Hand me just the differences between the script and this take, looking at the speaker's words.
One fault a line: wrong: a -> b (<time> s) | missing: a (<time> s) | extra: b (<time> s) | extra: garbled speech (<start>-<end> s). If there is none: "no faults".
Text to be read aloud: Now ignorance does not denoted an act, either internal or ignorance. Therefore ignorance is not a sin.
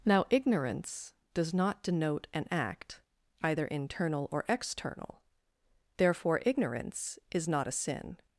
wrong: denoted -> denote (1.8 s)
wrong: ignorance -> external (4.5 s)